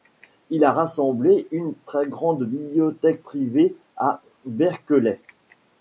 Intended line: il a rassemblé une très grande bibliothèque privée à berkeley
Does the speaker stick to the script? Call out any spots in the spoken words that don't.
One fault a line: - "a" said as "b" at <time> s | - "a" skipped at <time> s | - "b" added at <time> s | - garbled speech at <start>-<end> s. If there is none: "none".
none